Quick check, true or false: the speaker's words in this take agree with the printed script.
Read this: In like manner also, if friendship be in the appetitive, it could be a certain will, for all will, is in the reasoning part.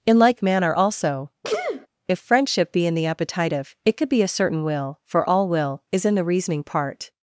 true